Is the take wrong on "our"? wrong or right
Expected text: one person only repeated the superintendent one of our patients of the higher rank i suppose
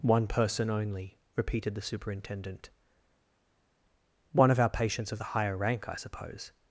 right